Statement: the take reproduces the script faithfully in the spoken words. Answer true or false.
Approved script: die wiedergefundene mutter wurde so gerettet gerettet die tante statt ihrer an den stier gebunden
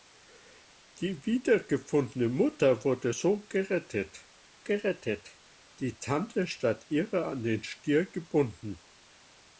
true